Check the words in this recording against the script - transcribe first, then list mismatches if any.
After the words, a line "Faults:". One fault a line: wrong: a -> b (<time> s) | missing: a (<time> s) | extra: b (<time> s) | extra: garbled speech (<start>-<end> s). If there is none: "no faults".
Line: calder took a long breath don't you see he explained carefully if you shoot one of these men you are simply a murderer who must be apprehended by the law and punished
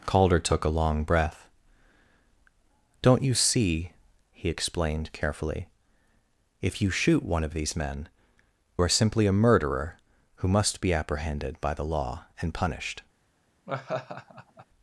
calder took a long breath don't you see he explained carefully if you shoot one of these men are simply a murderer who must be apprehended by the law and punished
Faults:
missing: you (8.1 s)